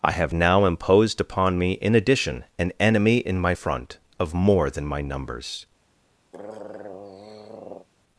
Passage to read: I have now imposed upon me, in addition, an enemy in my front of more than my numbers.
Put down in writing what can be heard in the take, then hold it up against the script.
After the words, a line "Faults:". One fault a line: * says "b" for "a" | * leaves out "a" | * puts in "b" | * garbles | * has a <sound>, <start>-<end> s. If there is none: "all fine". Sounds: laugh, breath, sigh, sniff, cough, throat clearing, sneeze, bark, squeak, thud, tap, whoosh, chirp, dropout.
I have now imposed upon me, in addition, an enemy in my front of more than my numbers.
Faults:
* has a throat clearing, 6.3-7.9 s